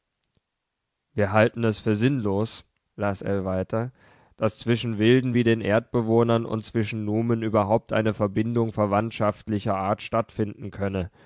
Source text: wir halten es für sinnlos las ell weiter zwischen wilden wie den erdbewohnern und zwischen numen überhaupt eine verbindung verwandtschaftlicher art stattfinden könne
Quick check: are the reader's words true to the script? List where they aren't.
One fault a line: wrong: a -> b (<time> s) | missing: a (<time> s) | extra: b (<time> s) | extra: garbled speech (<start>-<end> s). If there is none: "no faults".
extra: daß (4.4 s)